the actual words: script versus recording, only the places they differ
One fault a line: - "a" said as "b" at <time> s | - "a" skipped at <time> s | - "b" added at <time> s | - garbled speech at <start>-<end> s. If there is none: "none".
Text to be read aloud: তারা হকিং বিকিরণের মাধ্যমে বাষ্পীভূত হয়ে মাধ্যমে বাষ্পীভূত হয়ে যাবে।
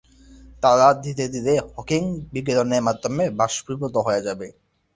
- "ধীরে ধীরে" added at 1.0 s
- "মাধ্যমে বাষ্পীভূত হয়ে" skipped at 4.2 s